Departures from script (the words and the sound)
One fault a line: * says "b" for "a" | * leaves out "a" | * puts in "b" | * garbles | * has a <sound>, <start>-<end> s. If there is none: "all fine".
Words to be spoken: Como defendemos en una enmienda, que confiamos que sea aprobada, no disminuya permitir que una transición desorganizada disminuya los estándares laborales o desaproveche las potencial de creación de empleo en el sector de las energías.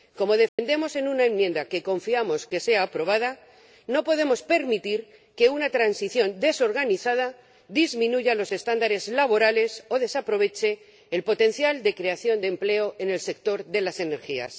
* has a dropout, 0.5-0.6 s
* says "podemos" for "disminuya"
* says "el" for "las"